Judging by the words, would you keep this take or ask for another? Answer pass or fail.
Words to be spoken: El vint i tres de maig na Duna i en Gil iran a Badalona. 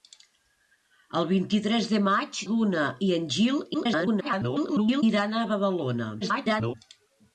fail